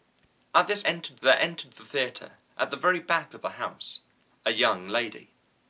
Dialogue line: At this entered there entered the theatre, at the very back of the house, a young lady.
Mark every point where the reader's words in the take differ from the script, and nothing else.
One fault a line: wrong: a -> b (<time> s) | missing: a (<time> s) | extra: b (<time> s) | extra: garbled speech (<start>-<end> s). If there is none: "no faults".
no faults